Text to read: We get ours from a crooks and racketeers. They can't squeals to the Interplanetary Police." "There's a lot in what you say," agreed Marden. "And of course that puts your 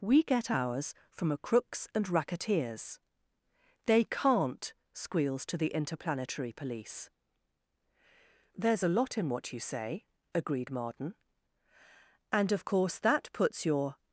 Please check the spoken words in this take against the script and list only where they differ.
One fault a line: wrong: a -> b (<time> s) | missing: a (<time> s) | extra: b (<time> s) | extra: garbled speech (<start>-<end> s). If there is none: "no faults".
no faults